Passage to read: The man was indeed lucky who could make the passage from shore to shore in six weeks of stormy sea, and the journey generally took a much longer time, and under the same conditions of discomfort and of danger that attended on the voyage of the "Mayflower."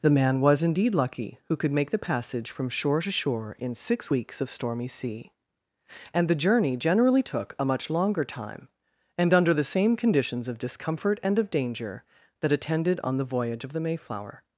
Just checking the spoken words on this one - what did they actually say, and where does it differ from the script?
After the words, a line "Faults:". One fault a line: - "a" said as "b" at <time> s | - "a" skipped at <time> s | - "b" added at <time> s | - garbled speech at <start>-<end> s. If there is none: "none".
The man was indeed lucky who could make the passage from shore to shore in six weeks of stormy sea, and the journey generally took a much longer time, and under the same conditions of discomfort and of danger that attended on the voyage of the "Mayflower."
Faults:
none